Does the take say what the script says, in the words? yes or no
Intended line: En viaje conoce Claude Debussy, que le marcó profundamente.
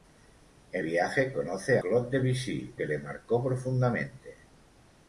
yes